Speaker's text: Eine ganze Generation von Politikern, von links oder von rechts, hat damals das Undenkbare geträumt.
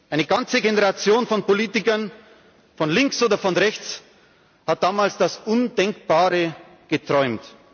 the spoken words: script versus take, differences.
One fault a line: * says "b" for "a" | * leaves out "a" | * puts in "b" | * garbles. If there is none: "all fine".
all fine